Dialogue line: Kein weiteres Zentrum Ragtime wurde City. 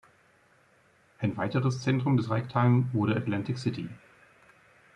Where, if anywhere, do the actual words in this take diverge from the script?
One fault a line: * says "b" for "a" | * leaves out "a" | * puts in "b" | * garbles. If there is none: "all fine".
* says "Ein" for "Kein"
* puts in "des"
* puts in "Atlantic"